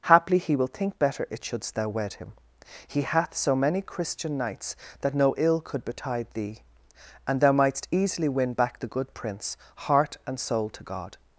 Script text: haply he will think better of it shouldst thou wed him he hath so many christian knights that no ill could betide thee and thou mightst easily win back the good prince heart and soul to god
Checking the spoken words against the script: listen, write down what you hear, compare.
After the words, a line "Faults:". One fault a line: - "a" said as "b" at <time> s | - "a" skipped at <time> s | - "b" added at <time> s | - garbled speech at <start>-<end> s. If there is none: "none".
haply he will think better it shouldst thou wed him he hath so many christian knights that no ill could betide thee and thou mightst easily win back the good prince heart and soul to god
Faults:
- "of" skipped at 1.3 s